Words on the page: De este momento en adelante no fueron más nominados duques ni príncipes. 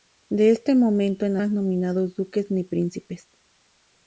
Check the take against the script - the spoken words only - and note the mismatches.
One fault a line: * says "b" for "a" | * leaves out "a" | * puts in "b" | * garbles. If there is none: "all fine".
* leaves out "adelante no fueron"